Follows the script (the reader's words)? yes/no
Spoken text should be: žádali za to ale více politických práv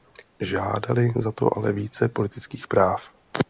yes